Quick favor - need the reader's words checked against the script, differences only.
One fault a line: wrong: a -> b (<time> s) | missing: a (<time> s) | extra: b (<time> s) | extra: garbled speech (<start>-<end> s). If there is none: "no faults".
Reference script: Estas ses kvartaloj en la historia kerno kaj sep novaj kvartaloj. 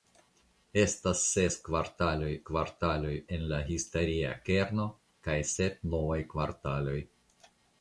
extra: kvartaloj (2.5 s)